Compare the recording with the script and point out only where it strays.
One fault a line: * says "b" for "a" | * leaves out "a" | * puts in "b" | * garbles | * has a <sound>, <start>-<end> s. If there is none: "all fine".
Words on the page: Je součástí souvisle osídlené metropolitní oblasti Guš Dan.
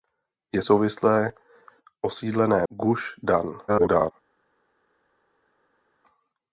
* leaves out "součástí"
* leaves out "metropolitní oblasti"
* garbles